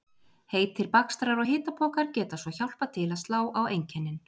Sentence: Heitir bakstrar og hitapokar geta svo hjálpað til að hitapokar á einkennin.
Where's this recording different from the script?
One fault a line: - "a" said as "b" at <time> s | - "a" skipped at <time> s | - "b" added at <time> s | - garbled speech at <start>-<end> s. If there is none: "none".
- "hitapokar" said as "slá" at 3.3 s